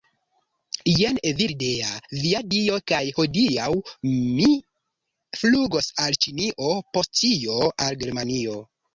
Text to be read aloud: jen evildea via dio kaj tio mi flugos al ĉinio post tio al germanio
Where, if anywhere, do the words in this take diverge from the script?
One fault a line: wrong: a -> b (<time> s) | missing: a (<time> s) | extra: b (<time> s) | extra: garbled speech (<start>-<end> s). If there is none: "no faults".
wrong: tio -> hodiaŭ (3.2 s)